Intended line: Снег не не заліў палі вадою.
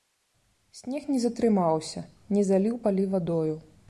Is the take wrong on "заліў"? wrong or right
right